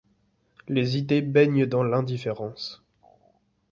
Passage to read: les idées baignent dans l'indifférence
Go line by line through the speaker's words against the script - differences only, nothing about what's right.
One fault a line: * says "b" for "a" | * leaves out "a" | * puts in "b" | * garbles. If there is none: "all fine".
all fine